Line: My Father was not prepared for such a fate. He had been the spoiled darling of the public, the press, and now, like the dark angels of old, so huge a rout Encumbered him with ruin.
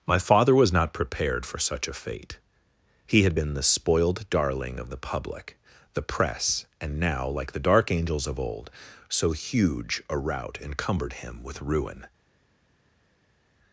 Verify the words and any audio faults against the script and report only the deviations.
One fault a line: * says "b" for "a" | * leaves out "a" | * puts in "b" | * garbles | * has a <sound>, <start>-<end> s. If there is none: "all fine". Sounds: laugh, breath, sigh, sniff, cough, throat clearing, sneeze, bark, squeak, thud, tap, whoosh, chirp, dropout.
all fine